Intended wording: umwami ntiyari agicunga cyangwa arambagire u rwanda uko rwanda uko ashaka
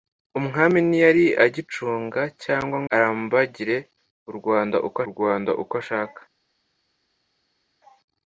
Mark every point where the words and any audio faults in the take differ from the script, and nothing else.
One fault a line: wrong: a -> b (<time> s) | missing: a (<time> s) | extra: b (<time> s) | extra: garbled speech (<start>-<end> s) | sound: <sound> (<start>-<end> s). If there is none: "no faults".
no faults